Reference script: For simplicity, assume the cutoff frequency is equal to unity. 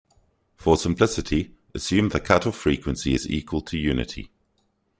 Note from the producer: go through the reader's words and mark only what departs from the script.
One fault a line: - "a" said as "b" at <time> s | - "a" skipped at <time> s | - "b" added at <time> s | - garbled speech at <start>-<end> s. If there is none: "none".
none